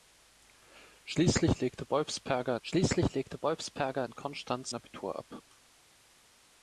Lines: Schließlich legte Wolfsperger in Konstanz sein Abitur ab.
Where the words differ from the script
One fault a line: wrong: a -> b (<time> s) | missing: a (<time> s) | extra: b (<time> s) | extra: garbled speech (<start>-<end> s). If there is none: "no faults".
extra: schließlich legte Wolfsperger (2.6 s)
missing: sein (4.7 s)